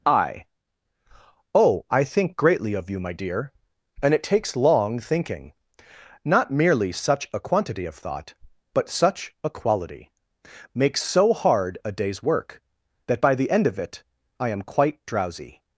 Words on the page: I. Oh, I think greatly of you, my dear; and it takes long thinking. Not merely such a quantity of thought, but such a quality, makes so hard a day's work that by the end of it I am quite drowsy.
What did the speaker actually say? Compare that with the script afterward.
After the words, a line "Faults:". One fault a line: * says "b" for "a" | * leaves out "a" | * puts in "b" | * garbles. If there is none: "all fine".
I. Oh, I think greatly of you, my dear; and it takes long thinking. Not merely such a quantity of thought, but such a quality, makes so hard a day's work that by the end of it I am quite drowsy.
Faults:
all fine